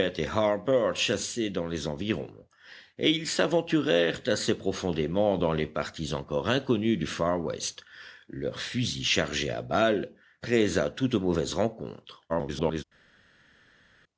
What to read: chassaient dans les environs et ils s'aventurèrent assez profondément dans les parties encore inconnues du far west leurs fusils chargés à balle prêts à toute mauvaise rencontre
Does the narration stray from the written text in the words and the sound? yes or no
yes